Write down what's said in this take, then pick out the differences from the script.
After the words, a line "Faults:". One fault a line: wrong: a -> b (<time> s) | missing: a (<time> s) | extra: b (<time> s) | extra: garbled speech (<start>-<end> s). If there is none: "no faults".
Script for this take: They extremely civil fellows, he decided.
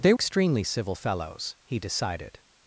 They extremely civil fellows, he decided.
Faults:
no faults